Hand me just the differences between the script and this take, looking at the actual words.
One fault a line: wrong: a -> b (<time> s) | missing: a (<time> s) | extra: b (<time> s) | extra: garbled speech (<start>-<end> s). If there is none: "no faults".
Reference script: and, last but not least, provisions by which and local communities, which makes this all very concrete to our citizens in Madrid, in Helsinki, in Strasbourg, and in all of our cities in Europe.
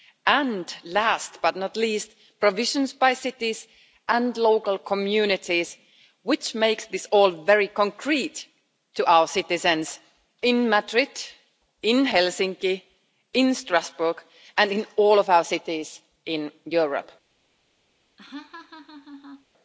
wrong: which -> cities (3.1 s)